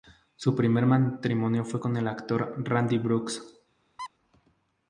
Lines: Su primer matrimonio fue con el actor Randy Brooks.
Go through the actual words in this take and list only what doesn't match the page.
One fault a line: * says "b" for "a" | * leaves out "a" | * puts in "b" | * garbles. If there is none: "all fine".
all fine